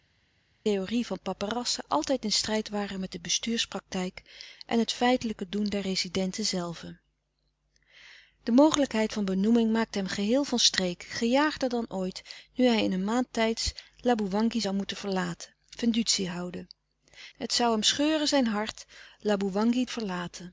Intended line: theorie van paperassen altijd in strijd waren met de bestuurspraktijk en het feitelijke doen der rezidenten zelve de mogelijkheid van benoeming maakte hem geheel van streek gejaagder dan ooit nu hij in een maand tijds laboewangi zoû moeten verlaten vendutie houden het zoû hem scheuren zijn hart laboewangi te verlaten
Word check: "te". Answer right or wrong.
wrong